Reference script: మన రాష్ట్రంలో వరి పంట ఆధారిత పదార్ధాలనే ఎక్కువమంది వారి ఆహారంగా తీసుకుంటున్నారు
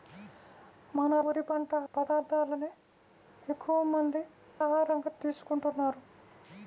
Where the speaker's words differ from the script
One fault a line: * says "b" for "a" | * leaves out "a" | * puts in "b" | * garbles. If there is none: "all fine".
* leaves out "రాష్ట్రంలో"
* leaves out "ఆధారిత"
* leaves out "వారి"